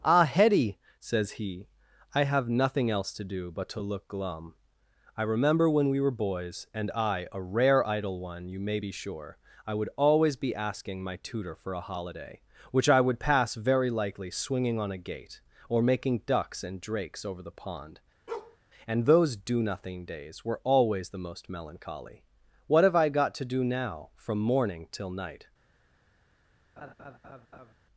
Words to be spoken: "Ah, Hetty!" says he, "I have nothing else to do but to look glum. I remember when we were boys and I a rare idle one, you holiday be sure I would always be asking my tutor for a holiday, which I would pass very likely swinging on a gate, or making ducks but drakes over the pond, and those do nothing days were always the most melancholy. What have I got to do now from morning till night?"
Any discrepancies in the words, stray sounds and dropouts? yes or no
yes